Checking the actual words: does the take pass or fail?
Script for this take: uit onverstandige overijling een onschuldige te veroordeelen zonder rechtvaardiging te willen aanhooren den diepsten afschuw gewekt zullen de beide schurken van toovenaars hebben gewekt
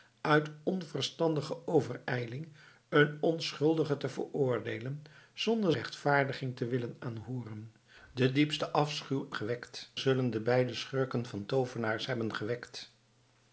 pass